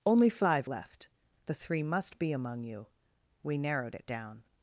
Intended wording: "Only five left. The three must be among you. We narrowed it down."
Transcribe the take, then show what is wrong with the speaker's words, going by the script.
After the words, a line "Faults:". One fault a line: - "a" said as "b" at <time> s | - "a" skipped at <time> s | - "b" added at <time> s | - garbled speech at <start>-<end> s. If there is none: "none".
"Only five left. The three must be among you. We narrowed it down."
Faults:
none